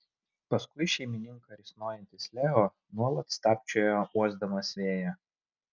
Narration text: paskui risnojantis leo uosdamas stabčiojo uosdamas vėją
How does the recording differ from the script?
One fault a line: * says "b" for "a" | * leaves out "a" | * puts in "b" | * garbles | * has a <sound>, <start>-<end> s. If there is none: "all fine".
* puts in "šeimininką"
* says "nuolat" for "uosdamas"